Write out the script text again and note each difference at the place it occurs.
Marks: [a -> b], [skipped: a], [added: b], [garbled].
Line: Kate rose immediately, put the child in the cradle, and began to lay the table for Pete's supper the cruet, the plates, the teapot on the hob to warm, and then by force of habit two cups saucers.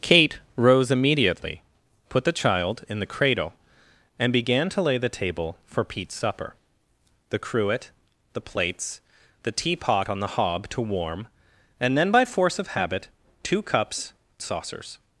Kate rose immediately, put the child in the cradle, and began to lay the table for Pete's supper the cruet, the plates, the teapot on the hob to warm, and then by force of habit two cups saucers.